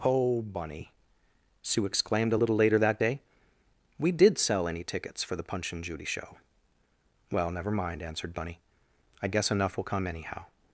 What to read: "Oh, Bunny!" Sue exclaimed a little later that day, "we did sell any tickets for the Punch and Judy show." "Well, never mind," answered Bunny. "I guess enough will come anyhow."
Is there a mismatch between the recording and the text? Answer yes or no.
no